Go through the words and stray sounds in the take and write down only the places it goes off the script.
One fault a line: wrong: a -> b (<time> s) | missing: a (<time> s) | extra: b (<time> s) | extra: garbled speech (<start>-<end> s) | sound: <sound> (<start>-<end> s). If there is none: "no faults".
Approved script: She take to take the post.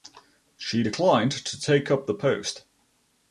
wrong: take -> declined (0.8 s)
extra: up (1.9 s)